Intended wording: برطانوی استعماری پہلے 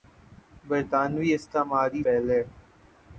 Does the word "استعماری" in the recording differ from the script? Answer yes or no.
no